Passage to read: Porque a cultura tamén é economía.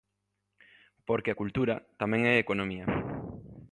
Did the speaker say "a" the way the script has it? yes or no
yes